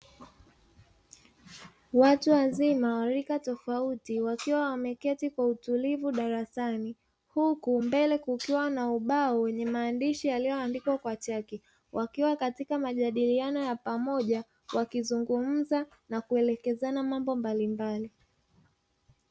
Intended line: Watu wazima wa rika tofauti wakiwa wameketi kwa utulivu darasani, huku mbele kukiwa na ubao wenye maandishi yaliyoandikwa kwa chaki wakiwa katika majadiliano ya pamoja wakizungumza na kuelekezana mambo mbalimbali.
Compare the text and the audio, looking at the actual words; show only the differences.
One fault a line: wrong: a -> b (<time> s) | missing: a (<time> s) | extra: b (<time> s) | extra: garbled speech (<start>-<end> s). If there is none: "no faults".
no faults